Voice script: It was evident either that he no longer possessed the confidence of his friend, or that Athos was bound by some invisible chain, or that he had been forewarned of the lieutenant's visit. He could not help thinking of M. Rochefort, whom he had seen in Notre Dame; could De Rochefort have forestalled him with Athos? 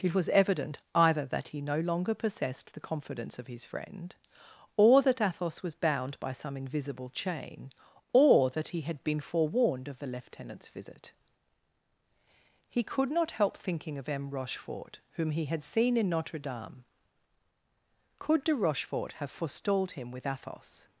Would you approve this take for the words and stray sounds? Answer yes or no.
yes